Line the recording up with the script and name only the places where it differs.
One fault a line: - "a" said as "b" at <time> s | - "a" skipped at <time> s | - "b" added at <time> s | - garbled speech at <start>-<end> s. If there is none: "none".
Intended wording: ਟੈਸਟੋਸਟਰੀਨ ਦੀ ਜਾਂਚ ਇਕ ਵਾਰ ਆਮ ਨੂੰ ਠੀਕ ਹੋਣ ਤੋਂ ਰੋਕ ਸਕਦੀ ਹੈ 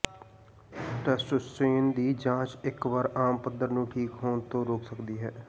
- "ਪੱਧਰ" added at 3.4 s